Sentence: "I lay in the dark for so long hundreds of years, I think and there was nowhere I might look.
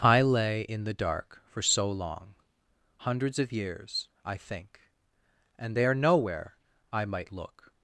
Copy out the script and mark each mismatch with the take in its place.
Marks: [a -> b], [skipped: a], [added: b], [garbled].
"I lay in the dark for so long hundreds of years, I think and there [skipped: was] nowhere I might look.